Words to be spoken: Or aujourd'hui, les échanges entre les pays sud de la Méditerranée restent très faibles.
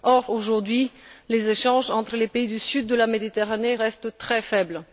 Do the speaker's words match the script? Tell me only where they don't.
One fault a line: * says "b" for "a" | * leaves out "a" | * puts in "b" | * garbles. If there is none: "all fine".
* puts in "du"